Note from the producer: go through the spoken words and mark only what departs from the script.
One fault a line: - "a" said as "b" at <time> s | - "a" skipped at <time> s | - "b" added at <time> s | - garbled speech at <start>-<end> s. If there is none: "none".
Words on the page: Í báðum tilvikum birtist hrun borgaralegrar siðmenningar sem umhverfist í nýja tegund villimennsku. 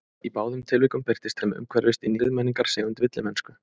- "hrun borgaralegrar siðmenningar" skipped at 1.4 s
- "nýja" said as "siðmenningar" at 2.2 s